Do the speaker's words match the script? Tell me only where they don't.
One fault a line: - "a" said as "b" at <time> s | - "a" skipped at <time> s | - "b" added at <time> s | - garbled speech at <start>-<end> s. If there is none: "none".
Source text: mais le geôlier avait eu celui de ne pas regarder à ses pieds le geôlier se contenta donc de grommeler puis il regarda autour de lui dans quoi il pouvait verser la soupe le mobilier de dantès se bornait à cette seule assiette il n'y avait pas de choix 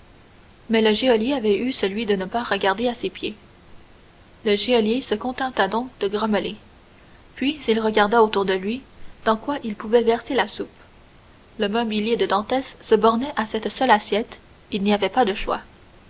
none